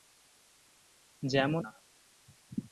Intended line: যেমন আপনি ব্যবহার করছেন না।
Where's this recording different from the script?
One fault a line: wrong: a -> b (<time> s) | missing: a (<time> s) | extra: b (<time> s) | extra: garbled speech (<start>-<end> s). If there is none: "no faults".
missing: আপনি ব্যবহার করছেন (1.6 s)